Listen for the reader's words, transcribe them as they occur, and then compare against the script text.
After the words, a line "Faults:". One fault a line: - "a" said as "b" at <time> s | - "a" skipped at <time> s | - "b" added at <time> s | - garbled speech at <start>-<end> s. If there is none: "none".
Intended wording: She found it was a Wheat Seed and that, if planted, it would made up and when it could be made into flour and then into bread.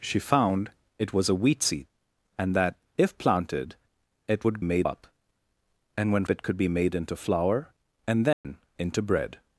She found it was a Wheat Seed and that, if planted, it would made up and when it could be made into flour and then into bread.
Faults:
none